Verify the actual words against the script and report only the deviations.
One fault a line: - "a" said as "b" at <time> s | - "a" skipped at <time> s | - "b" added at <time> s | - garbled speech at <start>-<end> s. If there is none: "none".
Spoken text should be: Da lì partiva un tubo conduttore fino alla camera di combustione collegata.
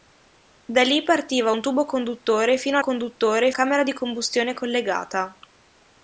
- "alla" said as "conduttore" at 2.8 s